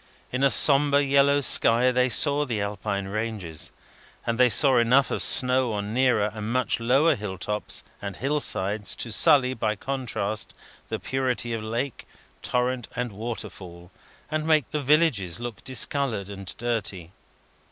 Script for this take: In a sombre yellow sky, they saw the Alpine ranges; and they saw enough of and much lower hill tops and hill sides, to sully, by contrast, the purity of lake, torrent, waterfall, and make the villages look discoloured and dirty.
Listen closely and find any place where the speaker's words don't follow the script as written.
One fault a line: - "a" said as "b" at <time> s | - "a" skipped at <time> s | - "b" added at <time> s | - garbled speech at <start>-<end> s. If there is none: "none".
- "snow on nearer" added at 5.2 s
- "and" added at 12.9 s